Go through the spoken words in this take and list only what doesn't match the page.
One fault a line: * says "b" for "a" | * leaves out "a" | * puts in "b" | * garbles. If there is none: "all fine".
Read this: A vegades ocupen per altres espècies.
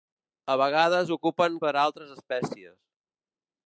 all fine